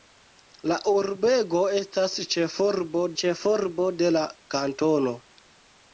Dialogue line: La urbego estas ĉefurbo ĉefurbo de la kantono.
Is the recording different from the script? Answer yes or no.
no